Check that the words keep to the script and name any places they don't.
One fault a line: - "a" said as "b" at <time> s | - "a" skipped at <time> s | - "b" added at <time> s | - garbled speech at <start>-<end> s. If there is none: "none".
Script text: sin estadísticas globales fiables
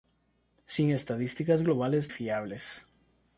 none